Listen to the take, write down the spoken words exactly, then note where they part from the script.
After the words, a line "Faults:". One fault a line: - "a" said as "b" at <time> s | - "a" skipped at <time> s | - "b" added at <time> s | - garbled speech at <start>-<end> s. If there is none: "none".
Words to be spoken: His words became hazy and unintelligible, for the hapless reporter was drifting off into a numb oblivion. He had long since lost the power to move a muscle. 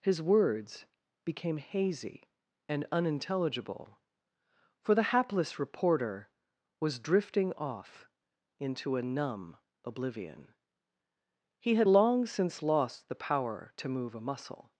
His words became hazy and unintelligible, for the hapless reporter was drifting off into a numb oblivion. He had long since lost the power to move a muscle.
Faults:
none